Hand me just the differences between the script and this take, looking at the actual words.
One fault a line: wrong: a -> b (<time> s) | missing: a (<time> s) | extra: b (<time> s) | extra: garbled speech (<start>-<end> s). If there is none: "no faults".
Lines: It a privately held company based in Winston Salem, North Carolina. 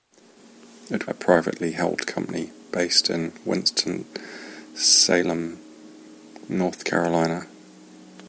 no faults